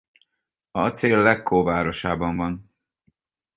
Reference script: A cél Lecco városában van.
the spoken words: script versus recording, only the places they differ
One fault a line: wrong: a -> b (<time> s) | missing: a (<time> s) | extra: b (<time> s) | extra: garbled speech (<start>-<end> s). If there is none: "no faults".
no faults